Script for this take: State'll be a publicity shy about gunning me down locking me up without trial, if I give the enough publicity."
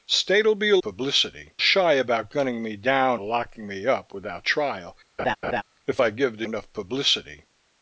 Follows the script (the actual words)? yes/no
yes